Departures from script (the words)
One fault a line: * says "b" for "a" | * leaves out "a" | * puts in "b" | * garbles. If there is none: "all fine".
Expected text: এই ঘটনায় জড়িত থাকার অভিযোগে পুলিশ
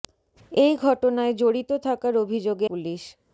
all fine